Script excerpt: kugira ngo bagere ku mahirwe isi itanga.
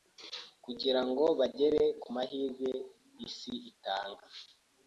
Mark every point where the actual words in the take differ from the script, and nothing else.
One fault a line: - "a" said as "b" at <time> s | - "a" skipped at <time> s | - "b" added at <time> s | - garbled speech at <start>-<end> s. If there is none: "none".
none